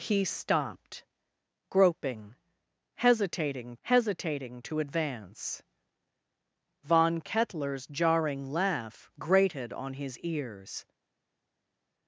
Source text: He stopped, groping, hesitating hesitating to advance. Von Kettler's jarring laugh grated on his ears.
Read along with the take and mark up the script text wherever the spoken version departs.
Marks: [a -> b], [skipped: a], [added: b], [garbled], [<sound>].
He stopped, groping, hesitating hesitating to advance. Von Kettler's jarring laugh grated on his ears.